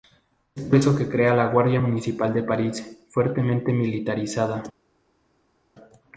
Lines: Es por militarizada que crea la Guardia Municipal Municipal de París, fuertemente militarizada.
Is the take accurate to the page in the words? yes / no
no